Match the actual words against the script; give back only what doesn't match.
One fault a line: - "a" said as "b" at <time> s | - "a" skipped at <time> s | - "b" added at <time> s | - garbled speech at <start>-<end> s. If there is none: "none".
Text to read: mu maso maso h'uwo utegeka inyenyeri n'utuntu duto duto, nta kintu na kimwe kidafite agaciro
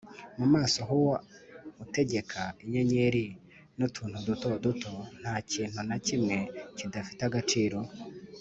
- "maso" skipped at 0.8 s